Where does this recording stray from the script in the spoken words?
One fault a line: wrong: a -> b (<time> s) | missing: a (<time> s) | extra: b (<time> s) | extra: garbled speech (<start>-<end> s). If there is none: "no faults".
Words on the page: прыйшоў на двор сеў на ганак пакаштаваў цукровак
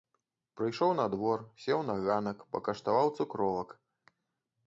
no faults